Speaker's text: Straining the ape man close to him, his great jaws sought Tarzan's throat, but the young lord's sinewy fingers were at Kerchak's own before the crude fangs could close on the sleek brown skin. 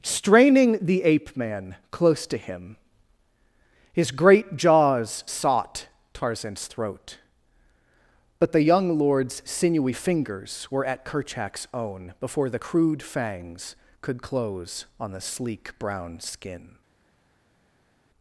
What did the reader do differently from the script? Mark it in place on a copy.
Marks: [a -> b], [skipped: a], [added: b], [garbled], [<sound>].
Straining the ape man close to him, his great jaws sought Tarzan's throat, but the young lord's sinewy fingers were at Kerchak's own before the crude fangs could close on the sleek brown skin.